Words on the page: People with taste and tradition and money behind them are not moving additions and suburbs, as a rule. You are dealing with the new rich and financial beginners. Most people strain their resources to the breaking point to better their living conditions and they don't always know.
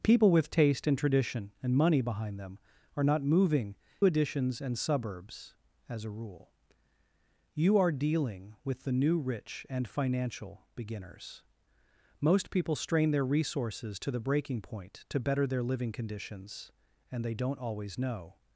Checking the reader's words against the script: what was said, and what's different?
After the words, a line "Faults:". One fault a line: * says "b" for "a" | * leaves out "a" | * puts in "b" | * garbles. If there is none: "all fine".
People with taste and tradition and money behind them are not moving additions and suburbs, as a rule. You are dealing with the new rich and financial beginners. Most people strain their resources to the breaking point to better their living conditions and they don't always know.
Faults:
all fine